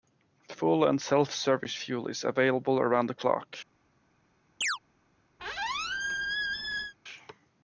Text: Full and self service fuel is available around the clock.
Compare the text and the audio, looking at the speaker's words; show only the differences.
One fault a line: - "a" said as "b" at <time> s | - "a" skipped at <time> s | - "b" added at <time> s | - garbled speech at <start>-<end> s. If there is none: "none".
none